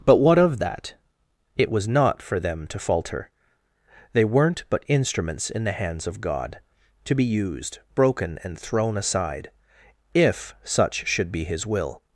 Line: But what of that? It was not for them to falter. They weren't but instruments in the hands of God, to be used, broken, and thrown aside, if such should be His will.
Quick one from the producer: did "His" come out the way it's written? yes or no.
yes